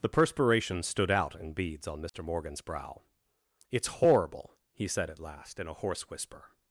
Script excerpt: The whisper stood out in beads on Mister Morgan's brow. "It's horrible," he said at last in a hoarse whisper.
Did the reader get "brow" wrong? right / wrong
right